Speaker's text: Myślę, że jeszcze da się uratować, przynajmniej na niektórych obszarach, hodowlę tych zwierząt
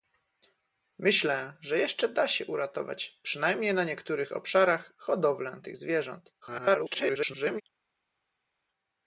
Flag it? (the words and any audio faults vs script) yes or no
yes